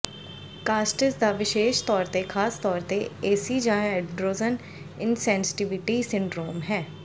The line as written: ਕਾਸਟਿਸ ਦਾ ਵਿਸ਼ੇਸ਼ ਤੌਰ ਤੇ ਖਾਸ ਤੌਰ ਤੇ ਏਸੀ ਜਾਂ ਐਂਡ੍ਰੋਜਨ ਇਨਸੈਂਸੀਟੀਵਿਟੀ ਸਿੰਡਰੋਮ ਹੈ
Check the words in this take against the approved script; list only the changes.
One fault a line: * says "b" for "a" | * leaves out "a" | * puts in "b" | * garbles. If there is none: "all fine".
all fine